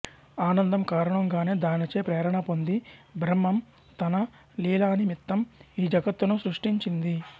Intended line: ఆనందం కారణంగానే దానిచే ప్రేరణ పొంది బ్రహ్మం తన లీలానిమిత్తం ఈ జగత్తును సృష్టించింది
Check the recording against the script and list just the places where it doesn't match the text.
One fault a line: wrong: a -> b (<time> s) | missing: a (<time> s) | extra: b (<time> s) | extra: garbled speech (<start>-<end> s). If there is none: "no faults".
no faults